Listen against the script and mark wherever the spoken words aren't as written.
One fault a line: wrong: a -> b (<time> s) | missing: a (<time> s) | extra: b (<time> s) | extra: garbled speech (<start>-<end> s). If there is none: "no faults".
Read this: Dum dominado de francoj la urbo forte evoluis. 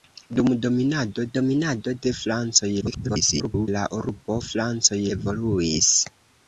extra: dominado (1.4 s)
extra: garbled speech (2.8-3.7 s)
wrong: forte -> francoj (4.5 s)